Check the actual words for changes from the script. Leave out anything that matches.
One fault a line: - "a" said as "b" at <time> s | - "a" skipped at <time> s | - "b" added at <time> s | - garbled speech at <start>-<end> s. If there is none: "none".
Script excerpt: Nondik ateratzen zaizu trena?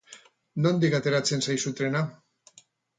none